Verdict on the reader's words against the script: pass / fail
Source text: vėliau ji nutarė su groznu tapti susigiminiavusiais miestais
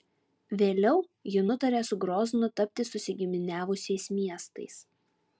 pass